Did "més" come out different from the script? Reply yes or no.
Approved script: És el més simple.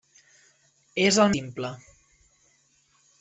yes